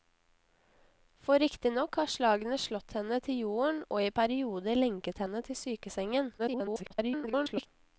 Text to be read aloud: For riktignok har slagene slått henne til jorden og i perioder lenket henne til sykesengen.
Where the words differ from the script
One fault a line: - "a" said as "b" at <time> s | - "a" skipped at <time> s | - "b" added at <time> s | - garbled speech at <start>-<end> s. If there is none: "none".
- garbled speech at 6.4-7.7 s